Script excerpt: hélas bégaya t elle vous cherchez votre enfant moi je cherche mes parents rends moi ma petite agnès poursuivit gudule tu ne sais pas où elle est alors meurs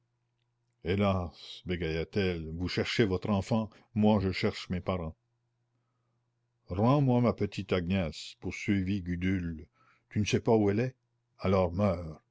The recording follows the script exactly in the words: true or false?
true